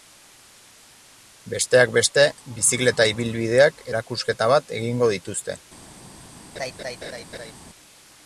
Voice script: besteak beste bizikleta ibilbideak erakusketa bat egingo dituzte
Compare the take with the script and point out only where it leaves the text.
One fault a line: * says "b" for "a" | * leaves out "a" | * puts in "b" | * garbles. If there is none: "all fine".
all fine